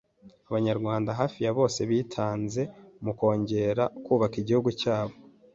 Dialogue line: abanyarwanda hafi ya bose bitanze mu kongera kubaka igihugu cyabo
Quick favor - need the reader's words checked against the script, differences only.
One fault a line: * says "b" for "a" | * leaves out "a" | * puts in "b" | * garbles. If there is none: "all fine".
all fine